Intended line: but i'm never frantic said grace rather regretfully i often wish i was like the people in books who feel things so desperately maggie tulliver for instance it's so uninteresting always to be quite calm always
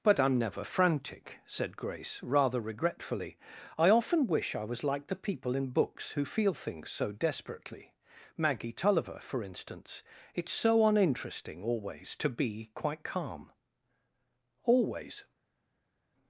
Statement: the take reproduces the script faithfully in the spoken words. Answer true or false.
true